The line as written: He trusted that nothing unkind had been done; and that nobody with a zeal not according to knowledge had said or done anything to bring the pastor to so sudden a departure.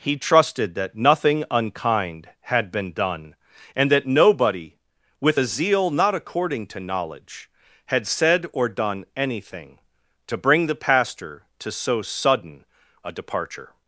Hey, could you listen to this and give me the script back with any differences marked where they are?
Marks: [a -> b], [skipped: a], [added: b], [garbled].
He trusted that nothing unkind had been done; and that nobody with a zeal not according to knowledge had said or done anything to bring the pastor to so sudden a departure.